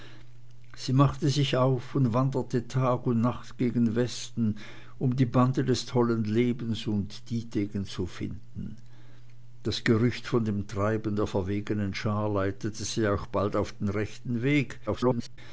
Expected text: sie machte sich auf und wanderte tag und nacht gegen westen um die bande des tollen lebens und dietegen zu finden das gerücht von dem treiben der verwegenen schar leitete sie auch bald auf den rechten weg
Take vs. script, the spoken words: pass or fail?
fail